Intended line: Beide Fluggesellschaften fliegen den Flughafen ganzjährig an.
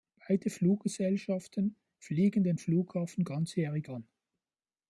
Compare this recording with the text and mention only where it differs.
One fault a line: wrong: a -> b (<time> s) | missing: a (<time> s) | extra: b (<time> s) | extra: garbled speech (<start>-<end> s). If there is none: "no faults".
no faults